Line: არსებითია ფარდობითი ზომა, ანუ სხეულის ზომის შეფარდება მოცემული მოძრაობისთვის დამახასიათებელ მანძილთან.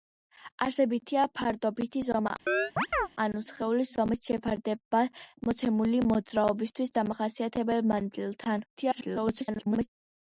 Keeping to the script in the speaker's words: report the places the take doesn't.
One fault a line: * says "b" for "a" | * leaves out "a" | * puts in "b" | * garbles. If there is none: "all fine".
* garbles